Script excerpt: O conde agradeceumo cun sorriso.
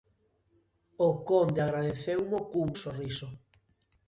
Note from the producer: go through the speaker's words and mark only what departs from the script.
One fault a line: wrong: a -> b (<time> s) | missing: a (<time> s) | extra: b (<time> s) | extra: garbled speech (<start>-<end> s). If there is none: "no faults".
no faults